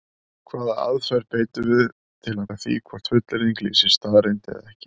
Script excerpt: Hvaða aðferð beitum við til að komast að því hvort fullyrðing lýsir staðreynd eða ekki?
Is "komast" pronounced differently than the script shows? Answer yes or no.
yes